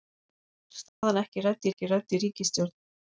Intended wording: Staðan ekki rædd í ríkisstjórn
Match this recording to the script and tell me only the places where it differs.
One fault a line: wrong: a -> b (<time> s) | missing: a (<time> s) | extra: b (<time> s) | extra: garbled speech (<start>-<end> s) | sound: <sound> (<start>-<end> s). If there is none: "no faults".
sound: dropout (0.9-1.0 s)
extra: ekki rædd (1.7 s)